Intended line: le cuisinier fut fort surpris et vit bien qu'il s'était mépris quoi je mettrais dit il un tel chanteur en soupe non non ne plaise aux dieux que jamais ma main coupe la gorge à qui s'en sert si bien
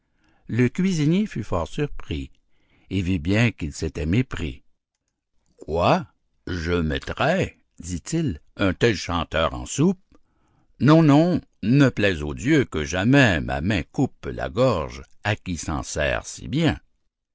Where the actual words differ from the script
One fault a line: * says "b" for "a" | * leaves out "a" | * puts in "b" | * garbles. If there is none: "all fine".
all fine